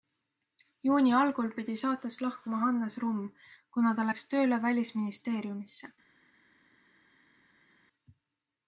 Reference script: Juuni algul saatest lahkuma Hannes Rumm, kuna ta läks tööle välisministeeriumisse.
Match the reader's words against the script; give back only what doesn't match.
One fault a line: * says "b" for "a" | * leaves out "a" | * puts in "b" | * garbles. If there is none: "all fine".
* puts in "pidi"